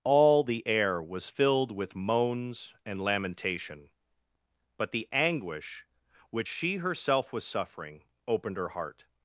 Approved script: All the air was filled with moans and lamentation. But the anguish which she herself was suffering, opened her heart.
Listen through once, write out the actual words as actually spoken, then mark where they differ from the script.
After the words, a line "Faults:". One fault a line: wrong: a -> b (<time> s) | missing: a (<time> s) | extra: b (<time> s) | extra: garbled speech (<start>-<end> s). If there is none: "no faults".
All the air was filled with moans and lamentation. But the anguish which she herself was suffering, opened her heart.
Faults:
no faults